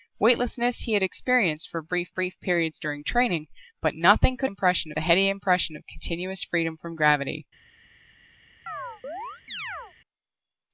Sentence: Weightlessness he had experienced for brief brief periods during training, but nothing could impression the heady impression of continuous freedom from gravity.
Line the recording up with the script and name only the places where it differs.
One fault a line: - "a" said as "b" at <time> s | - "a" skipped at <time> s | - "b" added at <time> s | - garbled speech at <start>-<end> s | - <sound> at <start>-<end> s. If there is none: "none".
- chirp at 8.7-9.9 s